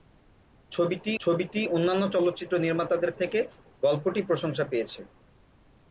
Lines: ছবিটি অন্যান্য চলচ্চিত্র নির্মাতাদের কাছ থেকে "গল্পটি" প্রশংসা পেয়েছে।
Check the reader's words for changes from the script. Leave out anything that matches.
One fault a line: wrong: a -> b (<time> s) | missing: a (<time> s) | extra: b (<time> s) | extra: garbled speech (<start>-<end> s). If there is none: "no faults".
extra: ছবিটি (1.2 s)
missing: কাছ (3.1 s)